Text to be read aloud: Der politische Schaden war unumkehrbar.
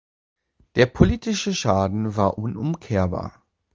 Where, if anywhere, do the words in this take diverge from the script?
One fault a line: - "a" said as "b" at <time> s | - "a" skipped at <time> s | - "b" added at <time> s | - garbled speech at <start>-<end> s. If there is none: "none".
none